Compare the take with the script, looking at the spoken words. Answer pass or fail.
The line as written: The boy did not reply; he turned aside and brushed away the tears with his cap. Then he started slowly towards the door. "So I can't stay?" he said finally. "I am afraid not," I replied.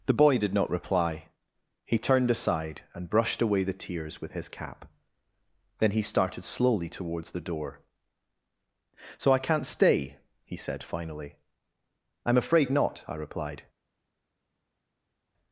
pass